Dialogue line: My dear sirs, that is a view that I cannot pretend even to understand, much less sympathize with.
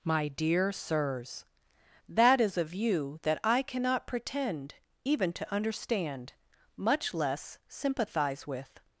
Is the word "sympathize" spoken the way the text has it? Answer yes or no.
yes